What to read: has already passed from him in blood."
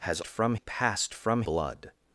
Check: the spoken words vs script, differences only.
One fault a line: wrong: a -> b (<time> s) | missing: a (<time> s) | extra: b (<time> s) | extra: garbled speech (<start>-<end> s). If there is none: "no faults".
wrong: already -> from (0.2 s)
missing: him in (1.4 s)